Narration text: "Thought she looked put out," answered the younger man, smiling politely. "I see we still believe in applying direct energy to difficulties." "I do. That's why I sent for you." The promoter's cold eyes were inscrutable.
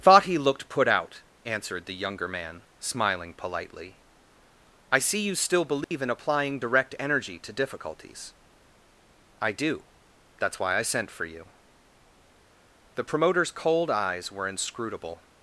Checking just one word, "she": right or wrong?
wrong